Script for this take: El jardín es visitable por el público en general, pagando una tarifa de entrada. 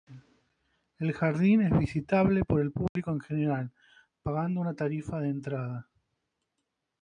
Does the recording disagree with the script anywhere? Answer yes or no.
no